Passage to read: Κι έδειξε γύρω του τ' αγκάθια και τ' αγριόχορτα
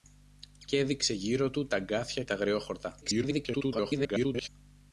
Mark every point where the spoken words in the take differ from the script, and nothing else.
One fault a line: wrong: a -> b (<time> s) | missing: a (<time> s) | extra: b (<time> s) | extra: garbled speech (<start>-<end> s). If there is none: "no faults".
missing: και (2.2 s)
extra: garbled speech (3.0-4.5 s)